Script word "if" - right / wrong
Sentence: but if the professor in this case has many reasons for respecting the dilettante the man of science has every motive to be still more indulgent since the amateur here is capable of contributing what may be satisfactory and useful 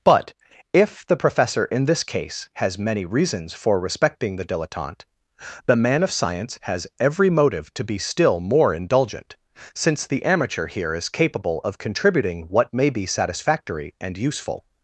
right